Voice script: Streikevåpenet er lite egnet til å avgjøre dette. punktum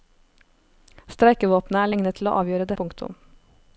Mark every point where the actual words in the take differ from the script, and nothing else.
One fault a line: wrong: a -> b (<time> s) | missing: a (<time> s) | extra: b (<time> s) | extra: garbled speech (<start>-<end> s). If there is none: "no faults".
missing: lite (1.9 s)
missing: dette (2.7 s)